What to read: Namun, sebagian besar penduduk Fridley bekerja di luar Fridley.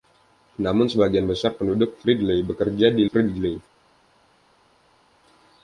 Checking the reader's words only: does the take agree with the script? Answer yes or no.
no